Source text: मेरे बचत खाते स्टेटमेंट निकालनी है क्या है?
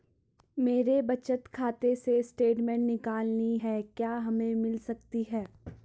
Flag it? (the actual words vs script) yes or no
yes